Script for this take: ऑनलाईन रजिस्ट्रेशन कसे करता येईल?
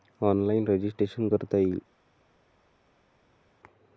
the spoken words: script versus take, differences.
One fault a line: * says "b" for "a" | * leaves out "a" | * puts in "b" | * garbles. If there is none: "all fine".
* leaves out "कसे"